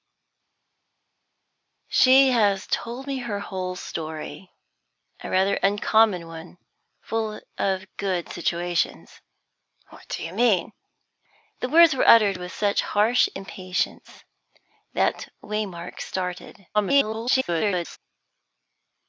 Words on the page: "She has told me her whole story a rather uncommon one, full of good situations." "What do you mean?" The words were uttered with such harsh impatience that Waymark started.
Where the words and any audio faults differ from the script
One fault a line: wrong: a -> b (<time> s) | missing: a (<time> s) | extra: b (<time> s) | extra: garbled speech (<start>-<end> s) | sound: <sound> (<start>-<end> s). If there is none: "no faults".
extra: garbled speech (16.7-18.0 s)